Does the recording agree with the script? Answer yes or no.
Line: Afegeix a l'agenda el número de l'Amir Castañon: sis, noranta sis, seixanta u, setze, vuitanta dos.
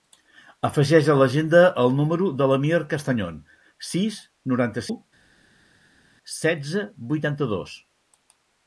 no